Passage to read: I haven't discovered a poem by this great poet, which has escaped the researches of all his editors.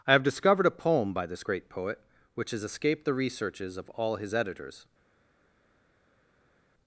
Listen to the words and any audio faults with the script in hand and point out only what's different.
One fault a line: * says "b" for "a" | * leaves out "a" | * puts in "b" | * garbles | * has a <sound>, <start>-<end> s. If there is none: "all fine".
* says "have" for "haven't"